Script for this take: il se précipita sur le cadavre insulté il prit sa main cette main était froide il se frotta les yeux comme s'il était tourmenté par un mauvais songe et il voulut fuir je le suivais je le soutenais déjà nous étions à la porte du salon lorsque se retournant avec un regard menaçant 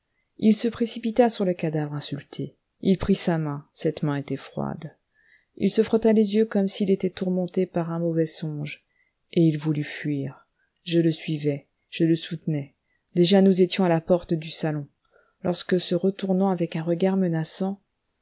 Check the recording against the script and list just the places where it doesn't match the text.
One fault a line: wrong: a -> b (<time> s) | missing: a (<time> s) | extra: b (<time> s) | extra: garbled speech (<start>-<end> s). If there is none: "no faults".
no faults